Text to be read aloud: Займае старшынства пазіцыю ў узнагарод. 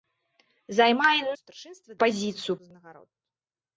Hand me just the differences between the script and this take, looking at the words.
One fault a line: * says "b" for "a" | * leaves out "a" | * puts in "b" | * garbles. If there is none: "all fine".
all fine